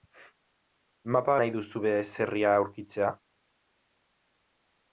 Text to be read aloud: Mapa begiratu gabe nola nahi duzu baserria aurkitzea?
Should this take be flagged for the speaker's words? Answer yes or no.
yes